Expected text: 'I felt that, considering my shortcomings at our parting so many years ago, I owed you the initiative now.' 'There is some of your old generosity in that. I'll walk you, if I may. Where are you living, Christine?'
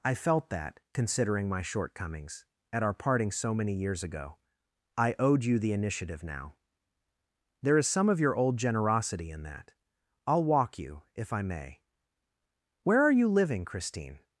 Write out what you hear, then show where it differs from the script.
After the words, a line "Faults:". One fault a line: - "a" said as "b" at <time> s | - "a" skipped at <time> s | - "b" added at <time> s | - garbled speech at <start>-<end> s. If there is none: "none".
'I felt that, considering my shortcomings at our parting so many years ago, I owed you the initiative now.' 'There is some of your old generosity in that. I'll walk you, if I may. Where are you living, Christine?'
Faults:
none